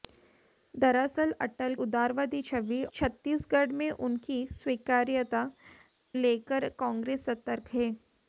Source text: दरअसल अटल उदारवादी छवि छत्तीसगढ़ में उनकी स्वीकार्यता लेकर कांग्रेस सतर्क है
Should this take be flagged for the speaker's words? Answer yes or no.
no